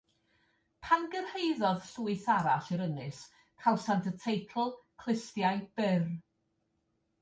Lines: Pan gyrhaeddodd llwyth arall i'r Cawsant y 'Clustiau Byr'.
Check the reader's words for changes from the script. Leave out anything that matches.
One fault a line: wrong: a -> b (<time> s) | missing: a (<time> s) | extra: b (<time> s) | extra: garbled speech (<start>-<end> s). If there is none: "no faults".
extra: Ynys (2.9 s)
extra: teitl (4.3 s)